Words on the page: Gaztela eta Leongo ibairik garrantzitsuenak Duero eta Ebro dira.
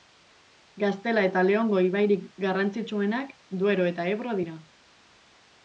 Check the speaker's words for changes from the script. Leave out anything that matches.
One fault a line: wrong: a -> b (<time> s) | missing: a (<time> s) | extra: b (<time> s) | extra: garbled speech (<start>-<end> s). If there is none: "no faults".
no faults